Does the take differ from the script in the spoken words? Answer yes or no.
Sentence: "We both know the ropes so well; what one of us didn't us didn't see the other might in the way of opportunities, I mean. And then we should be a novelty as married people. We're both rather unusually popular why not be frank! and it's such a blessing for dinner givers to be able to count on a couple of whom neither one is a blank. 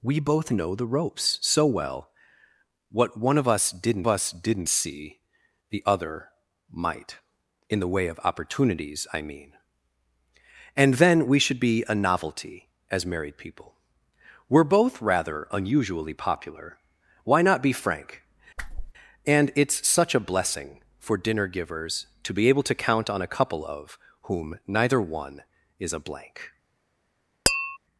no